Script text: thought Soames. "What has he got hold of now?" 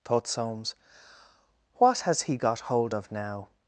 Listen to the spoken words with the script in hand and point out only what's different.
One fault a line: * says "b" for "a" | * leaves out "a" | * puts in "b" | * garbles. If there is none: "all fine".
all fine